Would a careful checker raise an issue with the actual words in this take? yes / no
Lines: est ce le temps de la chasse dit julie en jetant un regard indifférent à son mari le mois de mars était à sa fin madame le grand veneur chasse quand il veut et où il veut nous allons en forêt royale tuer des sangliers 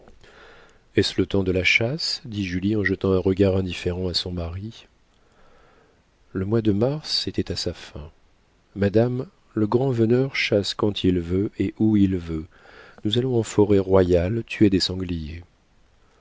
no